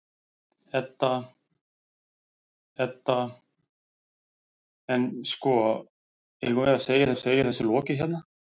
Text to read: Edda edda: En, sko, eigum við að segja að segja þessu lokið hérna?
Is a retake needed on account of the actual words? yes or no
no